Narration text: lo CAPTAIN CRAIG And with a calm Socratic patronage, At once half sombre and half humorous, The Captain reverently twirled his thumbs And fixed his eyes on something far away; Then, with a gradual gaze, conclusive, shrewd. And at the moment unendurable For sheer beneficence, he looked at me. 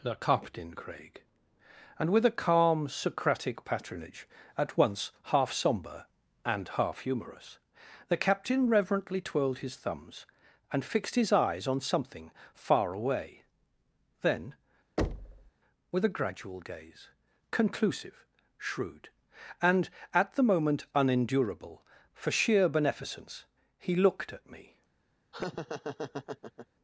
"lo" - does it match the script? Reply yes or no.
no